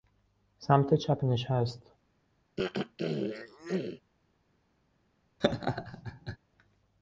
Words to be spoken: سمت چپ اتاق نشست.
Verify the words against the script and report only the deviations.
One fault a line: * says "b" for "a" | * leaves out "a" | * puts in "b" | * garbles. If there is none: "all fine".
* leaves out "اتاق"